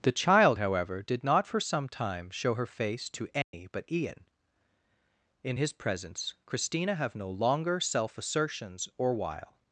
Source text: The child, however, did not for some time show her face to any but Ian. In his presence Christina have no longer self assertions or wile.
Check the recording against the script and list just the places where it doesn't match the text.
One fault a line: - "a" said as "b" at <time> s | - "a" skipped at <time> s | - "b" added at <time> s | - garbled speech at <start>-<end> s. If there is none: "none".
none